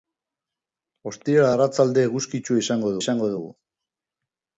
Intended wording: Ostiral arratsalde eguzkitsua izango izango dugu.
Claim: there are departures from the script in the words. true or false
false